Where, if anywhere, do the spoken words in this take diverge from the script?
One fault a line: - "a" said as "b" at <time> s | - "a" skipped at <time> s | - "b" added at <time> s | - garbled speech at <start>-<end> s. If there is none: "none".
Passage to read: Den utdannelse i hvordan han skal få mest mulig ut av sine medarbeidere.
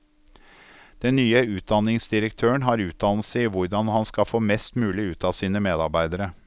- "nye utdanningsdirektøren har" added at 1.1 s